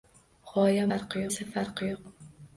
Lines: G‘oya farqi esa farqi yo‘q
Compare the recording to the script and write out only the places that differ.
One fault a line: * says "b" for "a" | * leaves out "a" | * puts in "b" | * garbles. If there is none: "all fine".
all fine